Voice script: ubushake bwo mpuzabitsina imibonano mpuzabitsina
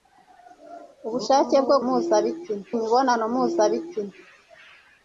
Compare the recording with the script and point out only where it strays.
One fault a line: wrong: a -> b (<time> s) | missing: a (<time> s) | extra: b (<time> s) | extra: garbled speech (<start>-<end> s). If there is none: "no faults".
no faults